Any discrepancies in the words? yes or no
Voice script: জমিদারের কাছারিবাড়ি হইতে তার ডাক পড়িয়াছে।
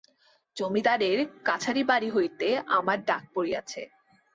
yes